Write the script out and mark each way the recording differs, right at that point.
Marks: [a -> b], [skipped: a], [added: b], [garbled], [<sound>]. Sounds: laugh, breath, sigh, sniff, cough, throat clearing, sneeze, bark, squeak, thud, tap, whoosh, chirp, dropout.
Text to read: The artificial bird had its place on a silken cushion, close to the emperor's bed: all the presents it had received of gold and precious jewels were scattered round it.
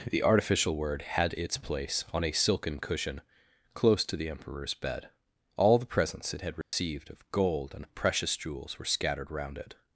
The artificial [bird -> word] had its place on a silken cushion, close to the emperor's bed: all the presents it had received [dropout] of gold and precious jewels were scattered round it.